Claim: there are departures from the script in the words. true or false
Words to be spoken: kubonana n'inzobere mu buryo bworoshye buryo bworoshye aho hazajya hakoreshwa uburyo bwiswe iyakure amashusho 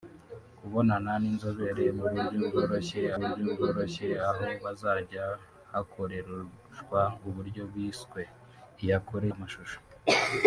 false